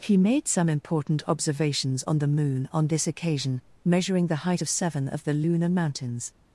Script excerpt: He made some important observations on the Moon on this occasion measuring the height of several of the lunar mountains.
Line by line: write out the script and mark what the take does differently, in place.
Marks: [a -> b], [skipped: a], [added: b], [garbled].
He made some important observations on the Moon on this occasion measuring the height of [several -> seven] of the lunar mountains.